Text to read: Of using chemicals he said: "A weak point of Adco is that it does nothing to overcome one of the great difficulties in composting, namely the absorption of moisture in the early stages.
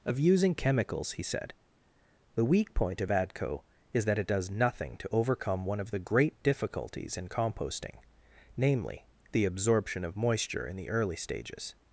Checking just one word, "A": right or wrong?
wrong